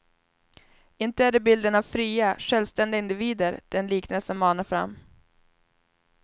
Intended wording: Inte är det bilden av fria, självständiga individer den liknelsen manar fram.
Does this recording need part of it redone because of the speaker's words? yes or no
no